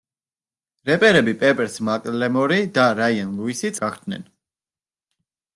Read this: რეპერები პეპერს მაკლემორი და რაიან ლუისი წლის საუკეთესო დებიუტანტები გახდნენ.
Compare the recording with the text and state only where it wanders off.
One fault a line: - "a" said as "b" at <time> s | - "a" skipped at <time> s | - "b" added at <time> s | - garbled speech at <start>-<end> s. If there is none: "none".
- "წლის საუკეთესო დებიუტანტები" skipped at 3.7 s